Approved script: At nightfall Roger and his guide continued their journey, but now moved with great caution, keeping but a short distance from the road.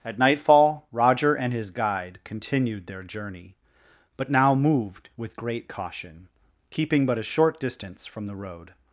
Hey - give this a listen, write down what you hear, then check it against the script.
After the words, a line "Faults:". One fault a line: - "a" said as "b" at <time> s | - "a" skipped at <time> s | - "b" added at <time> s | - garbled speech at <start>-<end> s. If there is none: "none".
At nightfall Roger and his guide continued their journey, but now moved with great caution, keeping but a short distance from the road.
Faults:
none